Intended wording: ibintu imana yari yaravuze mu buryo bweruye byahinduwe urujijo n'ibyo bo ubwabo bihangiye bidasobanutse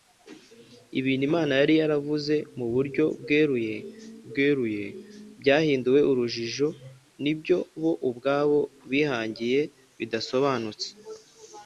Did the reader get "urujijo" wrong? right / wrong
right